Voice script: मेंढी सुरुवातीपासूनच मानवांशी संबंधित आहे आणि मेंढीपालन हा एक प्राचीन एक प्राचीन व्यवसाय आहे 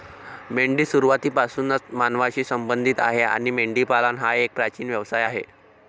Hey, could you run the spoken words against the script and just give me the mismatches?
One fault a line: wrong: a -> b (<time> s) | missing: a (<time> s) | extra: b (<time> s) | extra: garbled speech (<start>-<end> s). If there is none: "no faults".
missing: एक प्राचीन (4.9 s)